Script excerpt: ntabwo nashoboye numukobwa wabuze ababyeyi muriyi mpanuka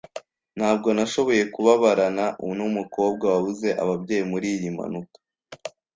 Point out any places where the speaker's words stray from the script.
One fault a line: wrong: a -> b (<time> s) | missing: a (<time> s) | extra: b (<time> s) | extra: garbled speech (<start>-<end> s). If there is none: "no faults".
extra: kubabarana (1.5 s)